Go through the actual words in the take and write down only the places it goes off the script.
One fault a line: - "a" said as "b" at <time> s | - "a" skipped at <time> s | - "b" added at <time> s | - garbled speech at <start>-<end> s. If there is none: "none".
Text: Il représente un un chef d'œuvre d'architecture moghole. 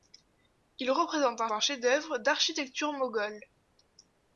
none